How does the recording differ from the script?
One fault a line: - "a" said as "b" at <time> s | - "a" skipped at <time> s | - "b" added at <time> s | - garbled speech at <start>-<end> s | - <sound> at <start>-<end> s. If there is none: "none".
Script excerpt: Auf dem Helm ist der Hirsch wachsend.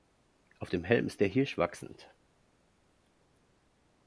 none